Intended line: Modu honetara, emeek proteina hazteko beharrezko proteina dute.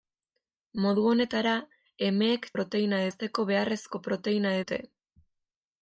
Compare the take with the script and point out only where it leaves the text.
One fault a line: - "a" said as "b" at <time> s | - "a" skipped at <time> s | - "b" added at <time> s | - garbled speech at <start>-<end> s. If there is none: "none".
none